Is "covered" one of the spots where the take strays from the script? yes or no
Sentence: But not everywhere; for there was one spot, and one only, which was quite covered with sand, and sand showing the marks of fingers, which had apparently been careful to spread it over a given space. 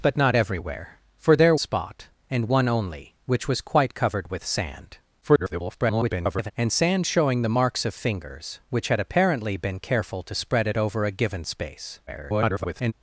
no